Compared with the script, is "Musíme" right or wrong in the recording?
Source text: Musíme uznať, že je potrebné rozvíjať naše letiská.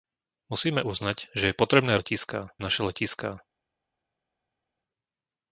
right